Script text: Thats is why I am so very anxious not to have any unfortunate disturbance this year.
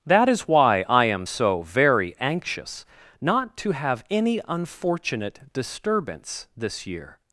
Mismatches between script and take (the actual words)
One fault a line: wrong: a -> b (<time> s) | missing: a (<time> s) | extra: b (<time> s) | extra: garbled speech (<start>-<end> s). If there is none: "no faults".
wrong: Thats -> That (0.1 s)